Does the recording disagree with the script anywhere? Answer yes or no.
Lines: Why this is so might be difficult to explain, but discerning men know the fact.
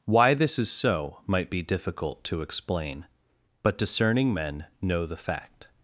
no